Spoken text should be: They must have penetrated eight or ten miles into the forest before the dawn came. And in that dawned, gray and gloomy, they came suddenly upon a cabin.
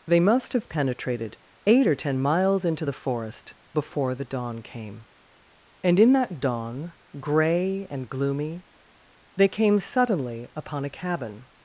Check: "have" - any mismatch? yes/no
no